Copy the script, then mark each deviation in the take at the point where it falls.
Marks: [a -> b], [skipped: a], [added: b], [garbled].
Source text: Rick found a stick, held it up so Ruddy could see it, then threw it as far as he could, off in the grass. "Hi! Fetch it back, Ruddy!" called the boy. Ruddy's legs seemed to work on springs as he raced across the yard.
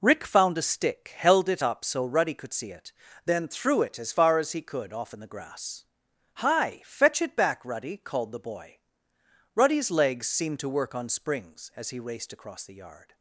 Rick found a stick, held it up so Ruddy could see it, then threw it as far as he could, off in the grass. "Hi! Fetch it back, Ruddy!" called the boy. Ruddy's legs seemed to work on springs as he raced across the yard.